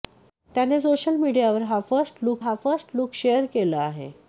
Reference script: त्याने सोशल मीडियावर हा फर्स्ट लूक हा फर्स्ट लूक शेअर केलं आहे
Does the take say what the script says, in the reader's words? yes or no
yes